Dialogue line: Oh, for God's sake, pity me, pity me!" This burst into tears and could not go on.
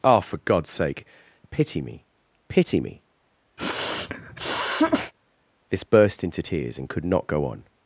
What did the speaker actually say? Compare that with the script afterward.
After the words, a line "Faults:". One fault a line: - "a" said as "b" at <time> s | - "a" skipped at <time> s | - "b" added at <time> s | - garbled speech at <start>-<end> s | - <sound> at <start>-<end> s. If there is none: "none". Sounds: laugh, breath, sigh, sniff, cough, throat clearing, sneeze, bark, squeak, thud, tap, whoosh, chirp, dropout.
Oh, for God's sake, pity me, pity me!" This burst into tears and could not go on.
Faults:
- sniff at 3.6-5.1 s